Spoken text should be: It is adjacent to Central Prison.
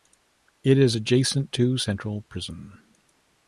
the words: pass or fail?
pass